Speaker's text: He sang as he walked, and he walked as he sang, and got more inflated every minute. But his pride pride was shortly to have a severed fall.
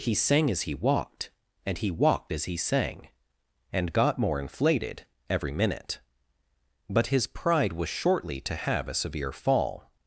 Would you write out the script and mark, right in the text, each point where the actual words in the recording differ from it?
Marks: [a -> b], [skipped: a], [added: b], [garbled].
He sang as he walked, and he walked as he sang, and got more inflated every minute. But his pride [skipped: pride] was shortly to have a [severed -> severe] fall.